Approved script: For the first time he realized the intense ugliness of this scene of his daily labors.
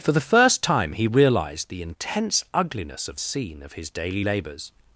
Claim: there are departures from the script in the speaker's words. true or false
true